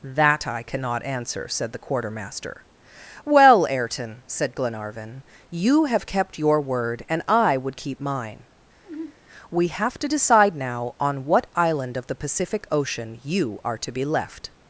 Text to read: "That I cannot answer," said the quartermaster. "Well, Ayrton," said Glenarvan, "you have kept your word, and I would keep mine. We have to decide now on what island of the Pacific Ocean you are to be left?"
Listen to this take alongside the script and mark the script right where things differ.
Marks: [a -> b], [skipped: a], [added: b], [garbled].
"That I cannot answer," said the quartermaster. "Well, Ayrton," said Glenarvan, "you have kept your word, and I would keep mine. We have to decide now on what island of the Pacific Ocean you are to be left?"